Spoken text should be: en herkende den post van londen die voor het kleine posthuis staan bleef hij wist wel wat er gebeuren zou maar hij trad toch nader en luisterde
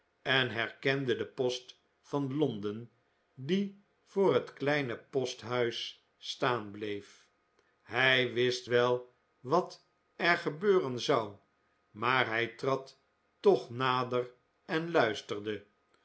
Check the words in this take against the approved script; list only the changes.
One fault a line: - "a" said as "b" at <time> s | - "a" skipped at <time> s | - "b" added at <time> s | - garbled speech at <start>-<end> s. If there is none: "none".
none